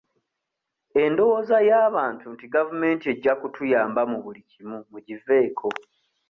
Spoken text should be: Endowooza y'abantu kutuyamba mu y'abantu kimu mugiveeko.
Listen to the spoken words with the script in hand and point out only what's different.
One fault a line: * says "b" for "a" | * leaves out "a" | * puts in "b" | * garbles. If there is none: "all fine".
* puts in "nti gavumenti ejja"
* says "buli" for "y'abantu"